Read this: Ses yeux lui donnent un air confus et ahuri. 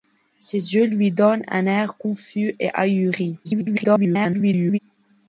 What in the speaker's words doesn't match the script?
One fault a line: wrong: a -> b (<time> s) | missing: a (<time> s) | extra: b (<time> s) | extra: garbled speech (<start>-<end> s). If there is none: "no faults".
extra: garbled speech (3.4-4.8 s)